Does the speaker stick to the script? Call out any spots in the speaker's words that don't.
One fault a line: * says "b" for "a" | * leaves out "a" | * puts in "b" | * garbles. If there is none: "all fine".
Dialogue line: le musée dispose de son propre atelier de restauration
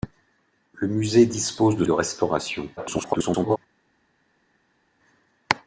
* leaves out "son propre atelier"
* garbles